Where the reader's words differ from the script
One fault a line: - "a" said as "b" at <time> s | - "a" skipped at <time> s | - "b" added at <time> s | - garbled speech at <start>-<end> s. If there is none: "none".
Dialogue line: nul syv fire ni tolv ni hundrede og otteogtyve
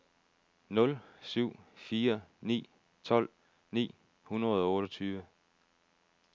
none